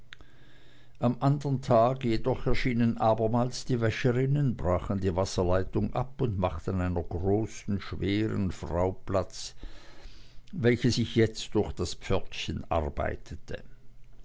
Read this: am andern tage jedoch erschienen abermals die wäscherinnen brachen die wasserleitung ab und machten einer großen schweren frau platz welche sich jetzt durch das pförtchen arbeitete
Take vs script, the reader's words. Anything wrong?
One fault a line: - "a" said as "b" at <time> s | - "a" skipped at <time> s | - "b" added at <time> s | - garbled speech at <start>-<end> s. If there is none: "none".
none